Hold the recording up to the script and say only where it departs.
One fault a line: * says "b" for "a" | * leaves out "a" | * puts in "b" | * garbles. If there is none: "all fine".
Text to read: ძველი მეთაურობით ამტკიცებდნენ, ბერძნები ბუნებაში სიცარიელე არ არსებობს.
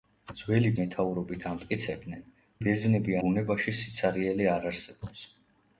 all fine